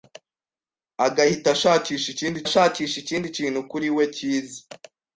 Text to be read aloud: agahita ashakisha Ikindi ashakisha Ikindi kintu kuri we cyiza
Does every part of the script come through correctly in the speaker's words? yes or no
yes